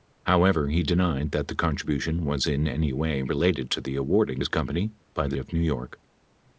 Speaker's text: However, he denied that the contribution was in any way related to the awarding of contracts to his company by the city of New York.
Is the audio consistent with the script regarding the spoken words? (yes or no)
no